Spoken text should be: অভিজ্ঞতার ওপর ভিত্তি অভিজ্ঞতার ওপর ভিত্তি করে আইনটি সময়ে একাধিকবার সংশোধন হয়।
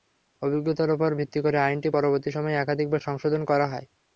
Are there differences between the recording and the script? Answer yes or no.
yes